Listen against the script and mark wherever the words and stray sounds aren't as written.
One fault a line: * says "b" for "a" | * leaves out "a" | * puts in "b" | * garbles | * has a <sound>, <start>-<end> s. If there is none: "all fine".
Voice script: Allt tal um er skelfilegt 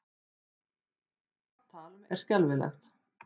all fine